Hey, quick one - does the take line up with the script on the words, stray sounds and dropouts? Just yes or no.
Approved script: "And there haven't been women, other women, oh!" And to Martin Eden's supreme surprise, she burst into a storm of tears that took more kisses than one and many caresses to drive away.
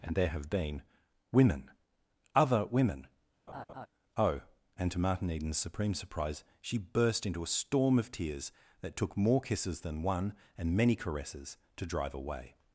no